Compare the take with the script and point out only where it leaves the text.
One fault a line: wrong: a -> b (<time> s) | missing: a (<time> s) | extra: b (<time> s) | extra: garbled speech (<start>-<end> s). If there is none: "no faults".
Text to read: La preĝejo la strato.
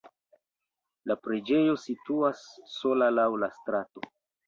extra: situas sola laŭ (1.8 s)